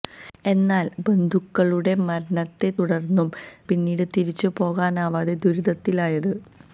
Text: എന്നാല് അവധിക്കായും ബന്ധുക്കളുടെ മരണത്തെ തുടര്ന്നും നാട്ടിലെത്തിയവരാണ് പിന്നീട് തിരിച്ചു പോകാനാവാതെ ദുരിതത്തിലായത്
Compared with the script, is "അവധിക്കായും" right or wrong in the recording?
wrong